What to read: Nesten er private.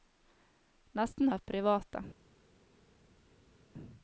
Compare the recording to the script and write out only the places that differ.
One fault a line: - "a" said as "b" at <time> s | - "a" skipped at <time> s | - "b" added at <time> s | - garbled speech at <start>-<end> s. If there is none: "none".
none